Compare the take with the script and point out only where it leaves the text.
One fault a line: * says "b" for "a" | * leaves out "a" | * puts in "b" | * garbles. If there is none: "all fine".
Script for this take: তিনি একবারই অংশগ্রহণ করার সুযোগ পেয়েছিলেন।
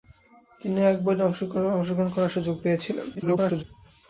* garbles